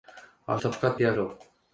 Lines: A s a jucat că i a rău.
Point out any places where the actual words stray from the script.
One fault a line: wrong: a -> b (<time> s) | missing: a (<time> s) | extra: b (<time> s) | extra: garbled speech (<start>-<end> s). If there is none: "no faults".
no faults